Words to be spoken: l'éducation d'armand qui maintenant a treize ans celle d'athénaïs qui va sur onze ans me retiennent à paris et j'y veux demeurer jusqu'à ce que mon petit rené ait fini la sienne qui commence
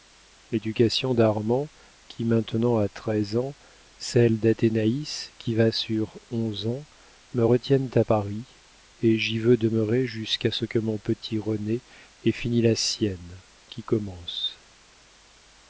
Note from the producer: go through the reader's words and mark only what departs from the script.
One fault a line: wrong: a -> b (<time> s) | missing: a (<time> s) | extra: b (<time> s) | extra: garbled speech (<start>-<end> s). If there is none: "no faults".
no faults